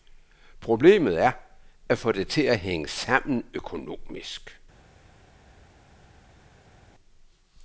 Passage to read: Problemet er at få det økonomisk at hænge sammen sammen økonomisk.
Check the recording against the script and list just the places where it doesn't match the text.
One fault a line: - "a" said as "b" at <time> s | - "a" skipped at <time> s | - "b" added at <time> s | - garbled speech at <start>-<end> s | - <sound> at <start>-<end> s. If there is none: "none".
- "økonomisk" said as "til" at 2.3 s
- "sammen" skipped at 3.5 s